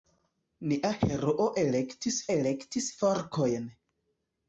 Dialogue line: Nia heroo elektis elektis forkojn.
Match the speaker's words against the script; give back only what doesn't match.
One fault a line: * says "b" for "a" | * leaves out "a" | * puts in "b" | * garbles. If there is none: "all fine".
all fine